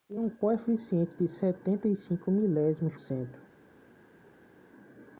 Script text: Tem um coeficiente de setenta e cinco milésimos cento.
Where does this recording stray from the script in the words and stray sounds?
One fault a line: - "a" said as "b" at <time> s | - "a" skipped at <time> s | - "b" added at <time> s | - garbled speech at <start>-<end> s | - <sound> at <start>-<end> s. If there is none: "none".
none